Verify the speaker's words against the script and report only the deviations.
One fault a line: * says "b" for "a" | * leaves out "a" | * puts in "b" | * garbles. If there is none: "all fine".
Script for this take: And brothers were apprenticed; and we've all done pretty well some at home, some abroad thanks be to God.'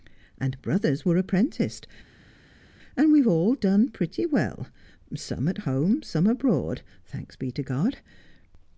all fine